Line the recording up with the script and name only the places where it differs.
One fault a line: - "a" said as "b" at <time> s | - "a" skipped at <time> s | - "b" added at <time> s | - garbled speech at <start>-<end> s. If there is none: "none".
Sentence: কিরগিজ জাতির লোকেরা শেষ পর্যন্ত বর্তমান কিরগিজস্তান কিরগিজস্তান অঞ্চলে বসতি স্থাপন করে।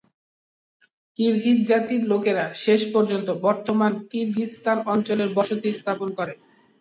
- "কিরগিজস্তান" skipped at 4.8 s